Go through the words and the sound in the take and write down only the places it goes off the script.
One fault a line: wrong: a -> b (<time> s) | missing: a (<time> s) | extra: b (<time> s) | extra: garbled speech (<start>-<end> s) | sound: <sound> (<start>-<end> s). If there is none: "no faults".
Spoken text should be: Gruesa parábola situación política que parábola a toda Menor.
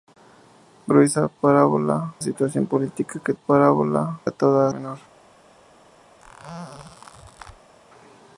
sound: squeak (6.2-7.7 s)